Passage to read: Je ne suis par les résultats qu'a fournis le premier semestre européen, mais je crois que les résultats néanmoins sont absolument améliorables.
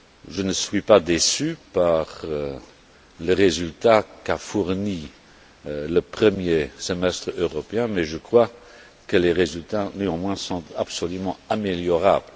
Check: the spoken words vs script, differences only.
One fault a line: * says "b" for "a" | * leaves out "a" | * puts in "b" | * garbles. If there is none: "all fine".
* puts in "pas déçu"